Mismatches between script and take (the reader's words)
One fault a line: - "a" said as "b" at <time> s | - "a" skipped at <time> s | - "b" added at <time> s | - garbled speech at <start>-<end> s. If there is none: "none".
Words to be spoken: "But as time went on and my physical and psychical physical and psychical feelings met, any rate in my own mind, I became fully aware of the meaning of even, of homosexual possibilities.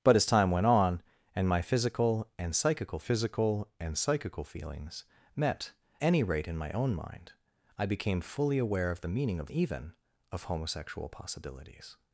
none